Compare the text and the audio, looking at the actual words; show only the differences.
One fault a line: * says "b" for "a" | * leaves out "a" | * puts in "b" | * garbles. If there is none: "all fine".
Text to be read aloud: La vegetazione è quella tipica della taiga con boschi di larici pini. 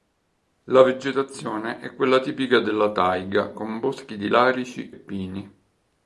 all fine